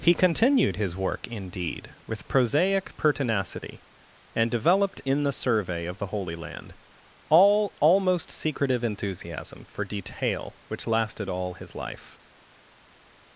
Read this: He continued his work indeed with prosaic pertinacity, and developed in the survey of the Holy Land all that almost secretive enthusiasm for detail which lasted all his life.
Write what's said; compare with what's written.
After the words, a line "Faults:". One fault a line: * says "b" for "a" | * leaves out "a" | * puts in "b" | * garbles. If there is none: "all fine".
He continued his work indeed with prosaic pertinacity, and developed in the survey of the Holy Land all almost secretive enthusiasm for detail which lasted all his life.
Faults:
* leaves out "that"